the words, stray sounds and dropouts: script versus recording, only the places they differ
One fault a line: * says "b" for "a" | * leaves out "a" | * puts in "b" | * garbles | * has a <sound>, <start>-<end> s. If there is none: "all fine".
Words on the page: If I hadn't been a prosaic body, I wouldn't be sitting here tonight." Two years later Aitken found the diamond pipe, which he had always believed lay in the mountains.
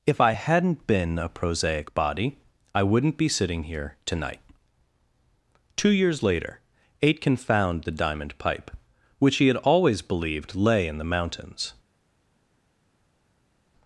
all fine